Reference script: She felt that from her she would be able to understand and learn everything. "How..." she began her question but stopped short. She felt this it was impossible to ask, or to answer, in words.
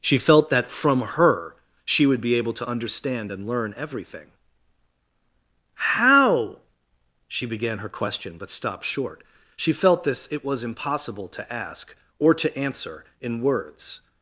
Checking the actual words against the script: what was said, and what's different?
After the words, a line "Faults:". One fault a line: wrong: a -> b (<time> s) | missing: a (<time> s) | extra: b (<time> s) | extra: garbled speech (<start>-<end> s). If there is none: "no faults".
She felt that from her she would be able to understand and learn everything. "How..." she began her question but stopped short. She felt this it was impossible to ask, or to answer, in words.
Faults:
no faults